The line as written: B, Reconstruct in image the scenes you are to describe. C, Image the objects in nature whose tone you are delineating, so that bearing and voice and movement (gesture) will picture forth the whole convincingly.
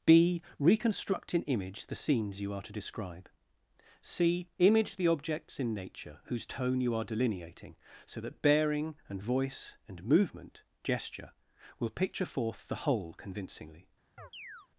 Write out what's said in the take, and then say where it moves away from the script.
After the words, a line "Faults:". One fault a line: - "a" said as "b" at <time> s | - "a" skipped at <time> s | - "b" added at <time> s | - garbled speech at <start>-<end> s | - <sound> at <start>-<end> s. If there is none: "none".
B, Reconstruct in image the scenes you are to describe. C, Image the objects in nature whose tone you are delineating, so that bearing and voice and movement (gesture) will picture forth the whole convincingly.
Faults:
- chirp at 14.2-14.7 s